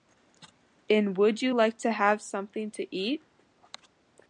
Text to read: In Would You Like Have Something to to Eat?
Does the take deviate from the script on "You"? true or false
false